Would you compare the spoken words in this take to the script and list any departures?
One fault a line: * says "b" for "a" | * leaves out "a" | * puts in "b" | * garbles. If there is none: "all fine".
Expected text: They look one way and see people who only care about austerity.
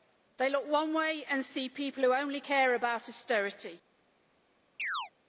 all fine